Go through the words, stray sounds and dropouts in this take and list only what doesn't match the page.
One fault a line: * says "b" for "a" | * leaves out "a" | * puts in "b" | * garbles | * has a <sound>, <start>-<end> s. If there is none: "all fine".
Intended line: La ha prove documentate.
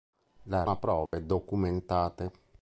* has a dropout, 1.1-1.1 s